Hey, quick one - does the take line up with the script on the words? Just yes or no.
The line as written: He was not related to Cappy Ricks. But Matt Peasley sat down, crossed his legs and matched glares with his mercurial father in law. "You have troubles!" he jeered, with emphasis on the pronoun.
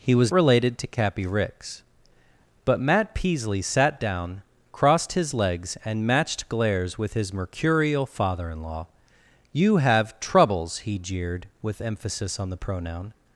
no